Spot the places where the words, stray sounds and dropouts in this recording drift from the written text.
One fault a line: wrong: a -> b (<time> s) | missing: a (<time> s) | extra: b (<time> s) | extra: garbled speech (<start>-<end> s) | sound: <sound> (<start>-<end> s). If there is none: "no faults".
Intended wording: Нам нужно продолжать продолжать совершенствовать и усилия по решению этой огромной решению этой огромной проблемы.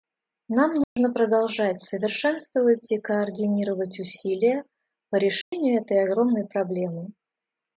sound: dropout (0.8-1.0 s)
missing: продолжать (1.8 s)
extra: координировать (3.0 s)
sound: dropout (5.4-5.5 s)
missing: решению этой огромной (6.5 s)